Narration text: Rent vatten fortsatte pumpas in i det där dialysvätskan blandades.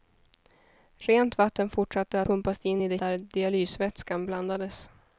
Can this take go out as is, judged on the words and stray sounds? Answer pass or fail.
pass